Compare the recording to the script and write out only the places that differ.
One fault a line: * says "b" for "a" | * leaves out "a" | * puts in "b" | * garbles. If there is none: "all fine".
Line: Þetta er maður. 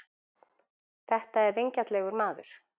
* puts in "vingjarnlegur"